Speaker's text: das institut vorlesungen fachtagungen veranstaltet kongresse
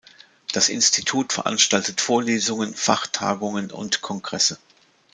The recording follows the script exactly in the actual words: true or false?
false